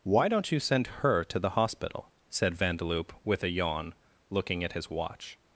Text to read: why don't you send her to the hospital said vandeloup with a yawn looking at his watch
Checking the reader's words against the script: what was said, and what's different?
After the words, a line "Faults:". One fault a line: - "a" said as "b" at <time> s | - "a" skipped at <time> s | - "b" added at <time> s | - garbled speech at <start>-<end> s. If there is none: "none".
why don't you send her to the hospital said vandeloup with a yawn looking at his watch
Faults:
none